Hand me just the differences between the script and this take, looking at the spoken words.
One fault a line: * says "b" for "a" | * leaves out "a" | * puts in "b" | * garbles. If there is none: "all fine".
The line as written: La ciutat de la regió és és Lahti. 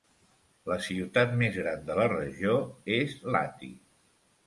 * puts in "més gran"
* leaves out "és"